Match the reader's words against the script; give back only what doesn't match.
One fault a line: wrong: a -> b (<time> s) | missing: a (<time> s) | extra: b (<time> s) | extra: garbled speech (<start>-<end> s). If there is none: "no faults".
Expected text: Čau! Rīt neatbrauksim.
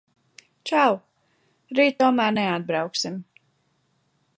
extra: tomēr (2.0 s)